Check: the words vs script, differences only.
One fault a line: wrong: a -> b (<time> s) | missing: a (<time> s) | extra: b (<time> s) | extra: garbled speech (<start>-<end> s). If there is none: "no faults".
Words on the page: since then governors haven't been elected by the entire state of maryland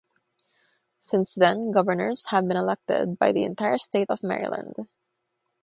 wrong: haven't -> have (2.3 s)